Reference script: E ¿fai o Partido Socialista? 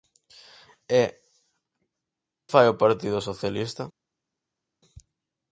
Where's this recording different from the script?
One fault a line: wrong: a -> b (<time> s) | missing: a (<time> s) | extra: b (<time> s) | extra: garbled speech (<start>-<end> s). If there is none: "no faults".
no faults